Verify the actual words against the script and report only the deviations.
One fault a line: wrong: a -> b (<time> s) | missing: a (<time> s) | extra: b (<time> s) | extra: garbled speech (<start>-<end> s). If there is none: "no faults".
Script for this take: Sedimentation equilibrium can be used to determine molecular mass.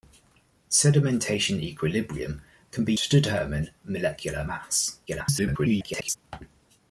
missing: used (2.9 s)
extra: garbled speech (5.1-6.2 s)